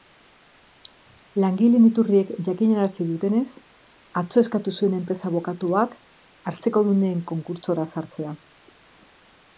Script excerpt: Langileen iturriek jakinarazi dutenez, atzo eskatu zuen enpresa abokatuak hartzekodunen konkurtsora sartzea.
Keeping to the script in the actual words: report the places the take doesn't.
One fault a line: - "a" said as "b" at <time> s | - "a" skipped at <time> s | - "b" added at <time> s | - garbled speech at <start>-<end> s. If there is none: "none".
none